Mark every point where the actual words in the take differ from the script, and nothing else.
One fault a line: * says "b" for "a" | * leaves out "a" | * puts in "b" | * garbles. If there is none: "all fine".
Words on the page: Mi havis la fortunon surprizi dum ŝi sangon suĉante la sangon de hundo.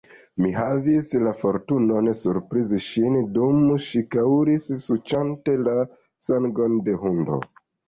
* puts in "ŝin"
* says "kaŭris" for "sangon"